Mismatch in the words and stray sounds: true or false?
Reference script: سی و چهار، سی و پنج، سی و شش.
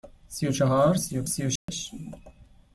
true